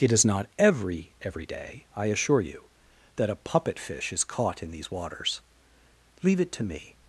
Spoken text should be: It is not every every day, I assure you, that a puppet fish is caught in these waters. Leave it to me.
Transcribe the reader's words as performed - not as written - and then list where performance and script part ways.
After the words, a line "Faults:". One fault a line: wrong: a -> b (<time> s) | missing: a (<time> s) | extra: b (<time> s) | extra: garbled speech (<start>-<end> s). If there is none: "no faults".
It is not every every day, I assure you, that a puppet fish is caught in these waters. Leave it to me.
Faults:
no faults